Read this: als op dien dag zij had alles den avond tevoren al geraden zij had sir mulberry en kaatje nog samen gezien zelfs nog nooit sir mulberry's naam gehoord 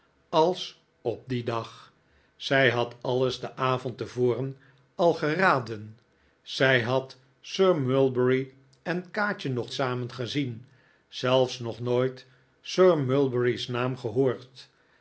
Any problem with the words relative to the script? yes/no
no